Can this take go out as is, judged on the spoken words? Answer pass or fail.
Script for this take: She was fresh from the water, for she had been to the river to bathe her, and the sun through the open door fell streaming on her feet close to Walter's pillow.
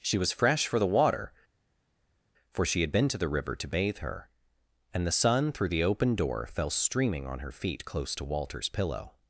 fail